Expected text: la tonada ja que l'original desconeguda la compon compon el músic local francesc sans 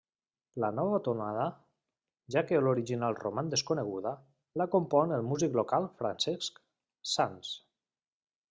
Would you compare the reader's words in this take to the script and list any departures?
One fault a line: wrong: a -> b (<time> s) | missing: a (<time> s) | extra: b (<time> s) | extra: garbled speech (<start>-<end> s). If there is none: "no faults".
extra: nova (0.8 s)
extra: roman (3.2 s)
missing: compon (5.2 s)